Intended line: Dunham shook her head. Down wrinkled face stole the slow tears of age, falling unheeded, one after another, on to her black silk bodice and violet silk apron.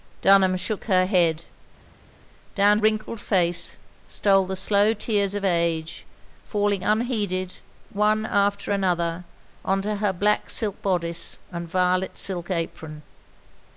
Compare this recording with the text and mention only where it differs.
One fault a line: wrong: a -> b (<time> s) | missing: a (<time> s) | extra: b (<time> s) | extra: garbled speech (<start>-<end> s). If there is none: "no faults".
no faults